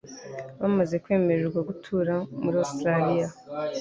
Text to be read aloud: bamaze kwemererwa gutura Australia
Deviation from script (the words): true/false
true